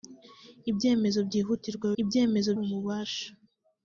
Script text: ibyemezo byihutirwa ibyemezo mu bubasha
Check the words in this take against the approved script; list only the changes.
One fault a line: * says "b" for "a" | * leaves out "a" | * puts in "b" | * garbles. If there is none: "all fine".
all fine